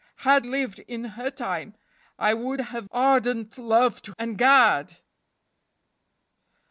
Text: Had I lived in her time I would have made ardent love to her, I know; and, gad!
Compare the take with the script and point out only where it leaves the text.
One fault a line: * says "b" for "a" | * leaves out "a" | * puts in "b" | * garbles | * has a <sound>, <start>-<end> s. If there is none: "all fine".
* leaves out "I"
* leaves out "made"
* leaves out "her I know"